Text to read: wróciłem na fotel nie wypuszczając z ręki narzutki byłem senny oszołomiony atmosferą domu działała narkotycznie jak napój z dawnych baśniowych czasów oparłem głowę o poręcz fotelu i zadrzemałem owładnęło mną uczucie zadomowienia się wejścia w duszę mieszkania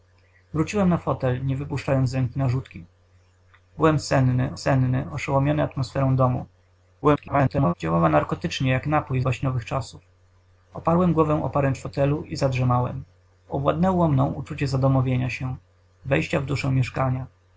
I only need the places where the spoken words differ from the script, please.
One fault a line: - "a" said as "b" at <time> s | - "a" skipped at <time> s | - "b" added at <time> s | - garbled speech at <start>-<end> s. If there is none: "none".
- "senny" added at 4.5 s
- garbled speech at 7.0-7.7 s
- "z dawnych" skipped at 9.2 s